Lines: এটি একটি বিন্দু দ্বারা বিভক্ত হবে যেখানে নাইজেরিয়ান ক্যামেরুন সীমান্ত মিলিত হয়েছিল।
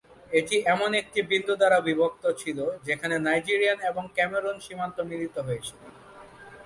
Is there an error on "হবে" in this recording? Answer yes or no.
yes